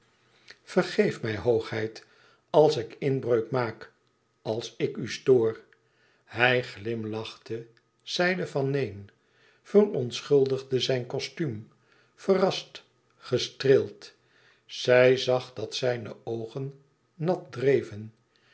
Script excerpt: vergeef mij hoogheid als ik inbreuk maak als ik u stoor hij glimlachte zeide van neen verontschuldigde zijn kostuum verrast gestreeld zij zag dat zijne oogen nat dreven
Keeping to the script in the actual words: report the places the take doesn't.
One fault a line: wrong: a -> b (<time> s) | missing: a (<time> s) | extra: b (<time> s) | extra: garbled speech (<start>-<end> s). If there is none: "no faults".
no faults